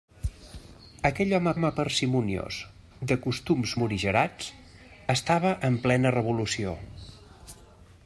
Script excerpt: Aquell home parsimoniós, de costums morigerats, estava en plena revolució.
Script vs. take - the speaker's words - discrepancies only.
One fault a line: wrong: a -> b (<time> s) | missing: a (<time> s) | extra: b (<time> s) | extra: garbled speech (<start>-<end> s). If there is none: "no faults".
extra: home (1.5 s)